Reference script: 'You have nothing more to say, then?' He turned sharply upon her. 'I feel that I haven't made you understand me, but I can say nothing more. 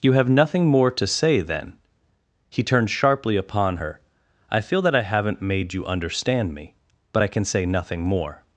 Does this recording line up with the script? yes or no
yes